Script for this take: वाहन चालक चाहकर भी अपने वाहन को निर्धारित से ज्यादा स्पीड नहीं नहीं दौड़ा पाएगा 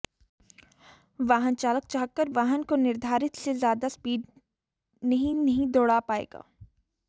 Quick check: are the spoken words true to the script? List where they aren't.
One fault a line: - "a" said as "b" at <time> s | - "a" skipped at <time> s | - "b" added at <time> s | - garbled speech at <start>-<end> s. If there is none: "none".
- "भी अपने" skipped at 2.3 s